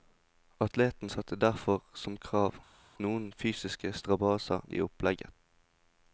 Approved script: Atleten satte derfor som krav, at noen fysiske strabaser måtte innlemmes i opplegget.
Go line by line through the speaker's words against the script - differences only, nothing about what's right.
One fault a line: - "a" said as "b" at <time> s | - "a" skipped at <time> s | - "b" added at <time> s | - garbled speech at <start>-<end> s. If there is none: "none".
- "at" skipped at 2.5 s
- "måtte innlemmes" skipped at 4.7 s